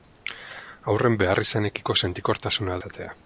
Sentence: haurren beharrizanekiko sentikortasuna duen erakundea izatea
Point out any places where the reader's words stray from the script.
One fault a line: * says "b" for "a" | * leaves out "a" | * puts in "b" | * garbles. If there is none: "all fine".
* leaves out "duen erakundea"